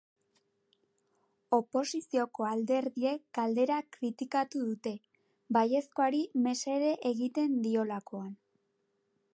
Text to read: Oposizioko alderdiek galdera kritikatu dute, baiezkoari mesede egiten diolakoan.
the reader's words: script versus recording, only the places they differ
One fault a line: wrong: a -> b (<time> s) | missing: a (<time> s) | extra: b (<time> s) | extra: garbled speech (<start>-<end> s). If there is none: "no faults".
no faults